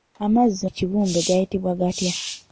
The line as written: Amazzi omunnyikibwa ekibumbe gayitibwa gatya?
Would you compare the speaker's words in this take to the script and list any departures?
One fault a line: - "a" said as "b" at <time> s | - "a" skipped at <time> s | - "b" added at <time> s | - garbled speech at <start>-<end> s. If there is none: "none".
- "omunnyikibwa" skipped at 0.6 s